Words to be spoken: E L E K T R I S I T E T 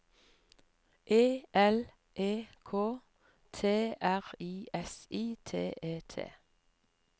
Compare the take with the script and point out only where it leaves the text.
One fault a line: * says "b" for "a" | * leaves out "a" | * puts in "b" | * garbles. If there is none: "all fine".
all fine